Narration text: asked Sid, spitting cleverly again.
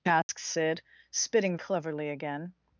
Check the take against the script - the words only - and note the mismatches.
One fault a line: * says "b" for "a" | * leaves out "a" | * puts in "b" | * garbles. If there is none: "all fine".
all fine